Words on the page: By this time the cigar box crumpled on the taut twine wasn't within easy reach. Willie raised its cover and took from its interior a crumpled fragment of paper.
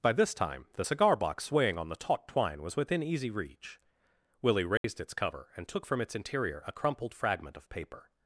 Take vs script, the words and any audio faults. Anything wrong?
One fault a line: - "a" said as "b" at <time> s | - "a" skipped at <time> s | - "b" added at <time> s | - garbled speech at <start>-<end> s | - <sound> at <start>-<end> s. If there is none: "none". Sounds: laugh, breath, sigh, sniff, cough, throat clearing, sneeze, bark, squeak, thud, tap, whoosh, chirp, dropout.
- "crumpled" said as "swaying" at 1.4 s
- "wasn't" said as "was" at 2.6 s
- dropout at 4.8-4.8 s